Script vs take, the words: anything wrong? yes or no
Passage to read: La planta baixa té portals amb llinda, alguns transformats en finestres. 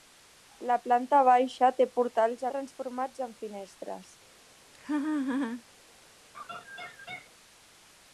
yes